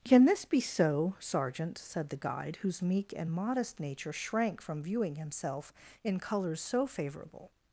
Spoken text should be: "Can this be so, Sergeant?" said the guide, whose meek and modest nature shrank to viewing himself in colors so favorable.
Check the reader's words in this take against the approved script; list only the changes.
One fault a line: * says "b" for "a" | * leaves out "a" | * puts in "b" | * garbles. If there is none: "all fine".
* says "from" for "to"